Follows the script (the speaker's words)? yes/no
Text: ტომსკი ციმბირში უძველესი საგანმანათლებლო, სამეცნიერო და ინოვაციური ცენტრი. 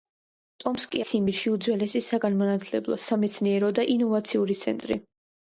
yes